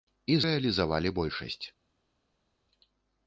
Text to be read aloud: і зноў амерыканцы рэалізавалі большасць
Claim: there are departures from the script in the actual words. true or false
true